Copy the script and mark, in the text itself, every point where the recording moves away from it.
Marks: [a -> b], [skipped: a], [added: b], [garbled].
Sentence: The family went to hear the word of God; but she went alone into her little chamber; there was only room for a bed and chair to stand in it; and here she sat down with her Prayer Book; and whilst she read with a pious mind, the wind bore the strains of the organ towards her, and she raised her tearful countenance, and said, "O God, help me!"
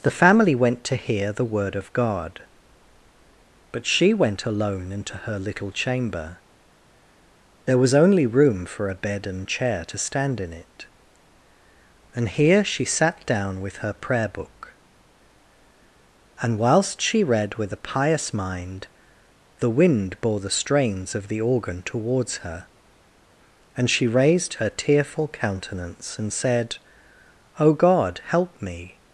The family went to hear the word of God; but she went alone into her little chamber; there was only room for a bed and chair to stand in it; and here she sat down with her Prayer Book; and whilst she read with a pious mind, the wind bore the strains of the organ towards her, and she raised her tearful countenance, and said, "O God, help me!"